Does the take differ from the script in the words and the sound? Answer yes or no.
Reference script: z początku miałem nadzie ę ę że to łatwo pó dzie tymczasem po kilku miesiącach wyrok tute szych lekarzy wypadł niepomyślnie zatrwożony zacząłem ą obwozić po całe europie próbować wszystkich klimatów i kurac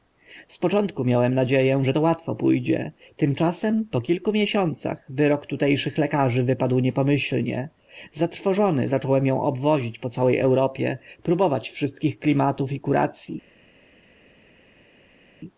yes